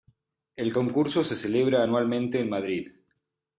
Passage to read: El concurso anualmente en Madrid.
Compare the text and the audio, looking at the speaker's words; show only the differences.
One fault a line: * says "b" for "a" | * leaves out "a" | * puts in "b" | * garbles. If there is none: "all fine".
* puts in "se celebra"